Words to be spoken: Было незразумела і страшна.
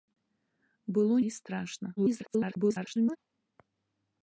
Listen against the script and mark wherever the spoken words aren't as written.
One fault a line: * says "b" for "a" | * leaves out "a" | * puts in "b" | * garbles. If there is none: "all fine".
* leaves out "незразумела"
* garbles